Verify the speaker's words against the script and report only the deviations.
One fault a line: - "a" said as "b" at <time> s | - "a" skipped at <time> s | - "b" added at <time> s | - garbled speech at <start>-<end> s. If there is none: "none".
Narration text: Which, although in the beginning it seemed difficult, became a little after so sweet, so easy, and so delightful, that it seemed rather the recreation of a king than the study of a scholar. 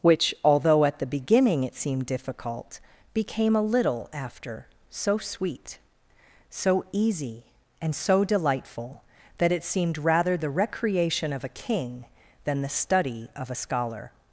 - "in" said as "at" at 0.8 s